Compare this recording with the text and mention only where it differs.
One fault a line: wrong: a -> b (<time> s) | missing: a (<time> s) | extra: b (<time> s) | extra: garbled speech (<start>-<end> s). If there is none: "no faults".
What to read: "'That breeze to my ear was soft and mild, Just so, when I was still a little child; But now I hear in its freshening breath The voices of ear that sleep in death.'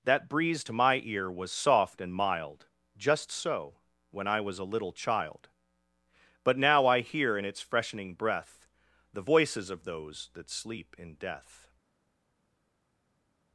missing: still (4.6 s)
wrong: ear -> those (9.8 s)